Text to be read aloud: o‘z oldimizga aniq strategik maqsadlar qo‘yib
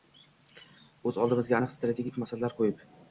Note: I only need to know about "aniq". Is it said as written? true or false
true